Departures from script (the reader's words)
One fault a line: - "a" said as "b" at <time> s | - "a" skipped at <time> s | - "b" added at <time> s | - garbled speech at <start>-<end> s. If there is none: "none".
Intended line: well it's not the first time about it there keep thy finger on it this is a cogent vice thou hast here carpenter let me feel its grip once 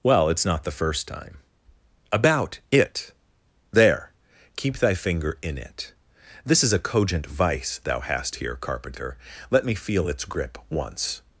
- "on" said as "in" at 5.4 s